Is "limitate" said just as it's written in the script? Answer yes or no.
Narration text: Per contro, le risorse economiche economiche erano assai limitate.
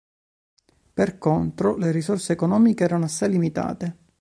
yes